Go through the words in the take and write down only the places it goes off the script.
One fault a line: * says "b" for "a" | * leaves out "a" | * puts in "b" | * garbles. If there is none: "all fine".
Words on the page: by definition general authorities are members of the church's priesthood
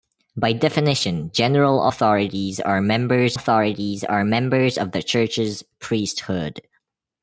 * puts in "authorities are members"